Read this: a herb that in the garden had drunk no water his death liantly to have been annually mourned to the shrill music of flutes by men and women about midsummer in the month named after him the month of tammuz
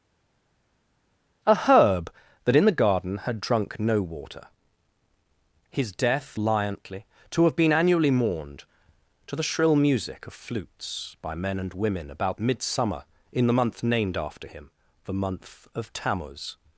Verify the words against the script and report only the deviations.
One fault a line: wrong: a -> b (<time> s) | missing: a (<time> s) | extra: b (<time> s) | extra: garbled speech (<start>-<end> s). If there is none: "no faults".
no faults